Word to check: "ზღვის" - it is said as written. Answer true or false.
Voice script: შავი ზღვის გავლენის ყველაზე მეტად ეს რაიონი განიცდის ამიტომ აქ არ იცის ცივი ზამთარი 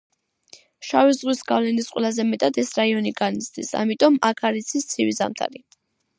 true